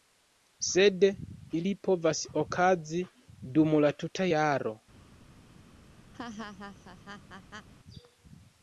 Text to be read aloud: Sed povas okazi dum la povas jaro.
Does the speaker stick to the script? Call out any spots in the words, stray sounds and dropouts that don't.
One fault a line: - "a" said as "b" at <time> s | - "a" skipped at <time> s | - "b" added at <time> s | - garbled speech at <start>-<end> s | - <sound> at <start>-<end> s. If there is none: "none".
- "ili" added at 1.6 s
- "povas" said as "tuta" at 4.0 s
- laugh at 6.1-7.7 s